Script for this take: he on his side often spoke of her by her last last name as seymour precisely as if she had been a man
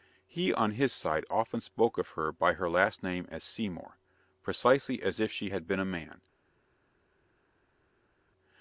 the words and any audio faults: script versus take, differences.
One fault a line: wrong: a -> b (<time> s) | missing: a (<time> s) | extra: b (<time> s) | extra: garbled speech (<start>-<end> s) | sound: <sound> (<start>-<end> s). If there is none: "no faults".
missing: last (3.0 s)